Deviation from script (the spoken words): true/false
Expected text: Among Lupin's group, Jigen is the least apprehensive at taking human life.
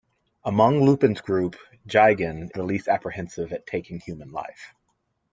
true